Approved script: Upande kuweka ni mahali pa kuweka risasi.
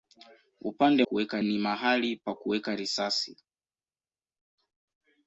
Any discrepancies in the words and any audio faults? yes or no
no